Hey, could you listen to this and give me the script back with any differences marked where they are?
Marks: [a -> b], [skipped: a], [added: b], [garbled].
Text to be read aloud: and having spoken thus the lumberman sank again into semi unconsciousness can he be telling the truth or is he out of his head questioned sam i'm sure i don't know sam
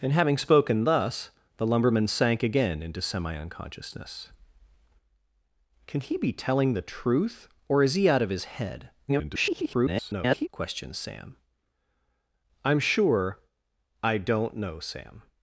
and having spoken thus the lumberman sank again into semi unconsciousness can he be telling the truth or is he out of his head [garbled] questioned sam i'm sure i don't know sam